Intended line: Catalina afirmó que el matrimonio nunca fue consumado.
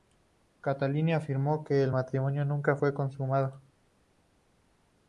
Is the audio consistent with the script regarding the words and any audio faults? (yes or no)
yes